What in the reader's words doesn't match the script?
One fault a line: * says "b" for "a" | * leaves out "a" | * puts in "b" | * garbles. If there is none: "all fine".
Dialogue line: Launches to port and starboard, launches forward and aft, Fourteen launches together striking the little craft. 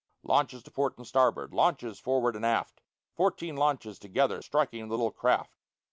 all fine